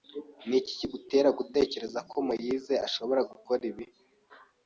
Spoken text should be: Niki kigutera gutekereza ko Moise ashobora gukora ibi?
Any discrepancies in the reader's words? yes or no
no